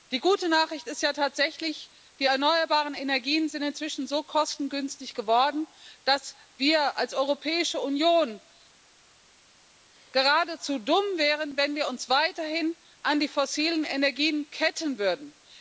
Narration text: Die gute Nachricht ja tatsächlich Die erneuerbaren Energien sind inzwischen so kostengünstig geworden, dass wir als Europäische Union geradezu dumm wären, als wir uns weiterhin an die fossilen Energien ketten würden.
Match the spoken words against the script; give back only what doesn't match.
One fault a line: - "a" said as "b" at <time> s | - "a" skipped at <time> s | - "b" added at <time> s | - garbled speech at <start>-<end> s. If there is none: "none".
- "ist" added at 0.9 s
- "als" said as "wenn" at 11.6 s